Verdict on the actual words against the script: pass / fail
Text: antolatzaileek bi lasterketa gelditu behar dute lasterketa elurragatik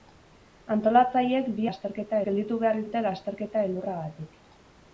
pass